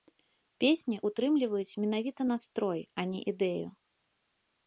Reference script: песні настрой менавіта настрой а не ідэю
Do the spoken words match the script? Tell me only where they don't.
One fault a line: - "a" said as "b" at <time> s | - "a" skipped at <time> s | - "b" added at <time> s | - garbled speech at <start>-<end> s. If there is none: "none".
- "настрой" said as "ўтрымліваюць" at 1.1 s